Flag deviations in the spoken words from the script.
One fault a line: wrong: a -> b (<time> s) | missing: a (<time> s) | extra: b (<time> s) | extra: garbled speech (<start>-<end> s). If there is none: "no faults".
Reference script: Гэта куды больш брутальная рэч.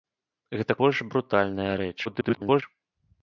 missing: куды (0.8 s)
extra: garbled speech (2.0-2.6 s)